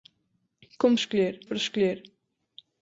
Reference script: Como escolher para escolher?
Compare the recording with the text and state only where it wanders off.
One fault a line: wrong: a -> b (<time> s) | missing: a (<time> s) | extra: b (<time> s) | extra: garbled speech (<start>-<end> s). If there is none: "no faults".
no faults